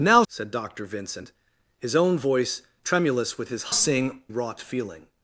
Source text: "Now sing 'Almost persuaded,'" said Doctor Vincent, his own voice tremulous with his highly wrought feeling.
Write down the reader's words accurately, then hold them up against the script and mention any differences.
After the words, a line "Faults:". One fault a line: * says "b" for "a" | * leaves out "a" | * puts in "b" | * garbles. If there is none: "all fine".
"Now,'" said Doctor Vincent, his own voice tremulous with his sing wrought feeling.
Faults:
* leaves out "sing Almost persuaded"
* says "sing" for "highly"